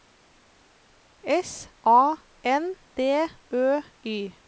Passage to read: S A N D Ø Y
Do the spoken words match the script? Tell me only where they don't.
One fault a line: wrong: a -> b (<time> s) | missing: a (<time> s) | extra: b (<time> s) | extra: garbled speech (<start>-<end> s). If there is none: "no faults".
no faults